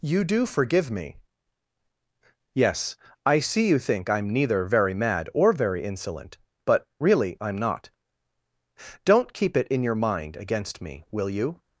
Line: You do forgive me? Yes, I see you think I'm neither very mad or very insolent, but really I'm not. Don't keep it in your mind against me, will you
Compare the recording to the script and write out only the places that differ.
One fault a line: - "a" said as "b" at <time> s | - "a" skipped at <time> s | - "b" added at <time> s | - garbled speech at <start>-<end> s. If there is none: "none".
none